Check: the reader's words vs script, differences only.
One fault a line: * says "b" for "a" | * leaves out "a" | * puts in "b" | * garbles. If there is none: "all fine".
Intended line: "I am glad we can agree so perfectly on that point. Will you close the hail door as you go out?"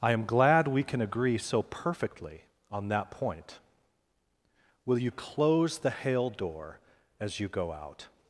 all fine